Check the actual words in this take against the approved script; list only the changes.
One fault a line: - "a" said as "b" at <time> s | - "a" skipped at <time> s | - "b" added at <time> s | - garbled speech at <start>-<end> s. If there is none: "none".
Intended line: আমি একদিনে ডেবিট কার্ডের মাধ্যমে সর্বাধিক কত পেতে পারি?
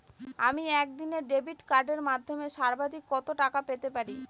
- "টাকা" added at 3.4 s